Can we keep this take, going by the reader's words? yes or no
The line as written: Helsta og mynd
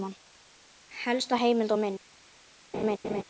no